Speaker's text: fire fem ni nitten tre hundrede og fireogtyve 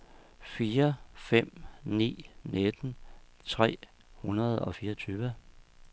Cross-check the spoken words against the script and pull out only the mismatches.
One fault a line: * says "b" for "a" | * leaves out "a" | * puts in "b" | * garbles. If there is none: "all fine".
all fine